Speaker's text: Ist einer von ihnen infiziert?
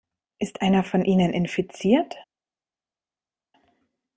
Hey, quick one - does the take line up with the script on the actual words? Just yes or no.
yes